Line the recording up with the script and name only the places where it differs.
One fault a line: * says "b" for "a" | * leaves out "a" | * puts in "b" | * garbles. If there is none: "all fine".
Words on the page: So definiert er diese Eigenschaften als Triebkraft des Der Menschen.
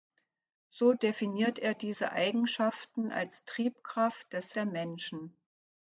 all fine